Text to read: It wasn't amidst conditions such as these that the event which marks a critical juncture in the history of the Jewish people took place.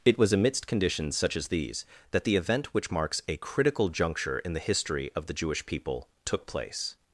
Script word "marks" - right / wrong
right